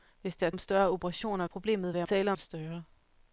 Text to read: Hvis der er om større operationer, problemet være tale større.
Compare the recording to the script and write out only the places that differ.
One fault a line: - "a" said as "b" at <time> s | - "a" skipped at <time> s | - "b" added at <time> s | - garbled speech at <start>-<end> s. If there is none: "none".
none